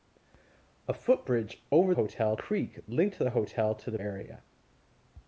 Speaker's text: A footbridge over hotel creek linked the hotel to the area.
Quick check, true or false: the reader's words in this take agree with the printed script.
true